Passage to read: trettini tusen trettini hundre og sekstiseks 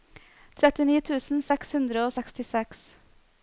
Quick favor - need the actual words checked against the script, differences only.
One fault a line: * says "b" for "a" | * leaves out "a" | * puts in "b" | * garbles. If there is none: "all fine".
* says "seks" for "trettini"